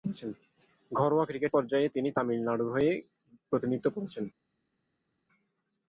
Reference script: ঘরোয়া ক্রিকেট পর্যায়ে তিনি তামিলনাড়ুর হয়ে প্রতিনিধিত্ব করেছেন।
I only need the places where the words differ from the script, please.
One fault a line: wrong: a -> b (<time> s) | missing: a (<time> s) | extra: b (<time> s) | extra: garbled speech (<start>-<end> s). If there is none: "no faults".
no faults